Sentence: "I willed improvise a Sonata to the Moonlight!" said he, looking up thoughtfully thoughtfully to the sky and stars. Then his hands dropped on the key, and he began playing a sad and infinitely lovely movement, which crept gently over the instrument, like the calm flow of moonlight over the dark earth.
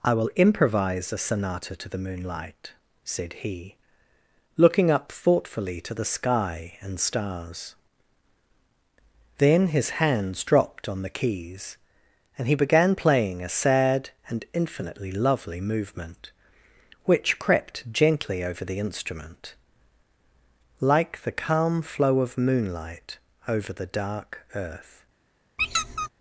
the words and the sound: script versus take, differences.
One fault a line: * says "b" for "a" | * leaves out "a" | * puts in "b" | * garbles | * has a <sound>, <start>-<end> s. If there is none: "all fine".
* says "will" for "willed"
* leaves out "thoughtfully"
* says "keys" for "key"
* has a squeak, 25.6-26.1 s